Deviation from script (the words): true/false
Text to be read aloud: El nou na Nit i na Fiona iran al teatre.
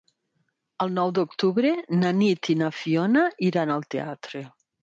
true